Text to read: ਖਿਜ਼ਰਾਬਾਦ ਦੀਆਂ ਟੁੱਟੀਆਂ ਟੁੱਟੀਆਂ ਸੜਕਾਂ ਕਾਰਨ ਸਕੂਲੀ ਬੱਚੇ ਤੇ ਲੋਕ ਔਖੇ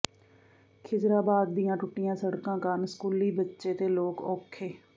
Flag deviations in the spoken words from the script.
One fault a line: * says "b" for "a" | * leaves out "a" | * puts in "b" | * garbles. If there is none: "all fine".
* leaves out "ਟੁੱਟੀਆਂ"